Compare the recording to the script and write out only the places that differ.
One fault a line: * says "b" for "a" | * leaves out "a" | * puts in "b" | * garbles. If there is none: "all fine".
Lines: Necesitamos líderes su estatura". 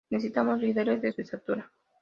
* puts in "de"